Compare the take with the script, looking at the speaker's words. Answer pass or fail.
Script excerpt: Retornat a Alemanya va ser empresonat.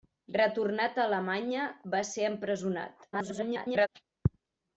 fail